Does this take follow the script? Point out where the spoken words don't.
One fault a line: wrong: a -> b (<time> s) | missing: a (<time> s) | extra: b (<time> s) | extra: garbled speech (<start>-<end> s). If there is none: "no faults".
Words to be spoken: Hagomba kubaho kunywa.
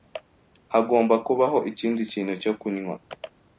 extra: ikindi kintu cyo (1.7 s)